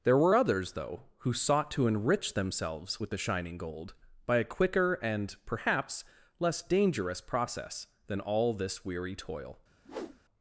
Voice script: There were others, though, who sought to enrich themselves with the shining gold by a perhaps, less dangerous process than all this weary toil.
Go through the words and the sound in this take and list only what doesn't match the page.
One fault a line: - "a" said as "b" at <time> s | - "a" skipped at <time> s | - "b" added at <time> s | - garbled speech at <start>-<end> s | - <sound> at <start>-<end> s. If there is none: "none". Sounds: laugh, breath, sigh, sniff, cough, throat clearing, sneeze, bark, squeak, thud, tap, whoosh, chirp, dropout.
- "quicker and" added at 4.4 s
- whoosh at 9.8-10.2 s